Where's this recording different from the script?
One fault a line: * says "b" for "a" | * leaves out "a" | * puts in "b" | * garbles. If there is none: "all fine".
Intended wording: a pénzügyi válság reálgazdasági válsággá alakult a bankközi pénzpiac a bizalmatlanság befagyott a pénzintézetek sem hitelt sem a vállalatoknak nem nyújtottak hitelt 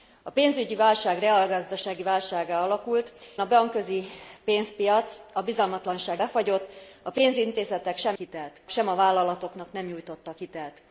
all fine